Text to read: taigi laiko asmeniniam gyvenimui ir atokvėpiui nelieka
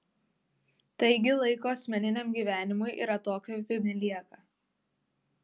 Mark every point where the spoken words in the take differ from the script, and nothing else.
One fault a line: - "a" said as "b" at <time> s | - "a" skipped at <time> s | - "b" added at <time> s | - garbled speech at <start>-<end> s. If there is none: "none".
none